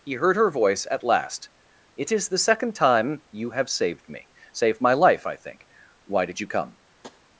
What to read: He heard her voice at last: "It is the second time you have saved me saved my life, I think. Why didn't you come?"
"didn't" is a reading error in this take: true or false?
true